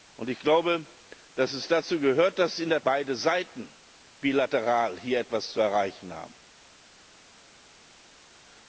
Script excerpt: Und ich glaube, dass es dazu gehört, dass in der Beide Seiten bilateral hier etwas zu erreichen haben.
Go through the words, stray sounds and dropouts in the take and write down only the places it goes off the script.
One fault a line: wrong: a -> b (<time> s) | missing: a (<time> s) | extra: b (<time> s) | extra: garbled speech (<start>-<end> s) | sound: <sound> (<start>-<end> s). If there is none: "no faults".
no faults